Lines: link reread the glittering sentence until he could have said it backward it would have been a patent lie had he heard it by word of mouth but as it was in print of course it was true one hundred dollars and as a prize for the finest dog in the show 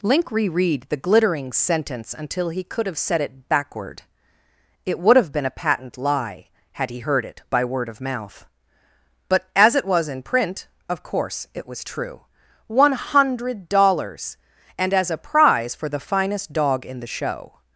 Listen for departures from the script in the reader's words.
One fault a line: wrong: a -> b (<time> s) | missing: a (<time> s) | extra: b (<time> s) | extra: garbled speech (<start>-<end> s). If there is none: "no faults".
no faults